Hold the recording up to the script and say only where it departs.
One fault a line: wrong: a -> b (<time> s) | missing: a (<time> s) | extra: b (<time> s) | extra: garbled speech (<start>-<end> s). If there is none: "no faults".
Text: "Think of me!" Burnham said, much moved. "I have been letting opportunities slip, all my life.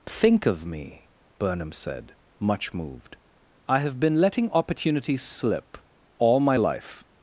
no faults